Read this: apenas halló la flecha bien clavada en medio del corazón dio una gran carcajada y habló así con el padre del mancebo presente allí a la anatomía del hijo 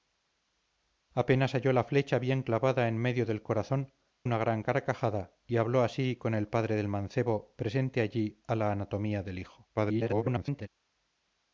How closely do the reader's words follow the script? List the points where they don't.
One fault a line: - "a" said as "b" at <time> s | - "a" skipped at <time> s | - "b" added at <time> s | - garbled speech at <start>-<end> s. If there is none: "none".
- "dio" skipped at 3.9 s
- garbled speech at 9.7-10.7 s